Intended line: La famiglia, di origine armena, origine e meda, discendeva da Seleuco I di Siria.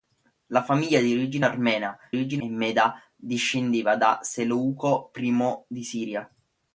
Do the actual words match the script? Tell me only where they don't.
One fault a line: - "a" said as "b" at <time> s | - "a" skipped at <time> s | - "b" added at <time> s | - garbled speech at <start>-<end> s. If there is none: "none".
none